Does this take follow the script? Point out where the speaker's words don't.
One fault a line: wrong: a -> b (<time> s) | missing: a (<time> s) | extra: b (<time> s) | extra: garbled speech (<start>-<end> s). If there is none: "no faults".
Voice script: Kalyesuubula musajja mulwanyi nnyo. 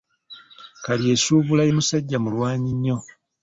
no faults